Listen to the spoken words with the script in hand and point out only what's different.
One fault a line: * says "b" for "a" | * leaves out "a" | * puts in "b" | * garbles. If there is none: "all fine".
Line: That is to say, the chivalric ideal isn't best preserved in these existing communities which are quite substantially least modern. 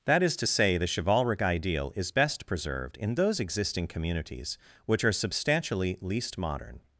* says "is" for "isn't"
* says "those" for "these"
* leaves out "quite"